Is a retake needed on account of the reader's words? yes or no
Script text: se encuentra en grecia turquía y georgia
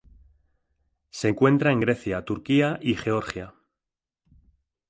no